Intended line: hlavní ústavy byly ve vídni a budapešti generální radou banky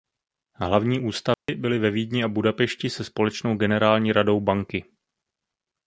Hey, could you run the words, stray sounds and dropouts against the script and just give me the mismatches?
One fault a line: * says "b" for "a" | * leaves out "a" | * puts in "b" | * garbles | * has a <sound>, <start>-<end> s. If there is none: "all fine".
* has a dropout, 1.3-1.5 s
* puts in "se společnou"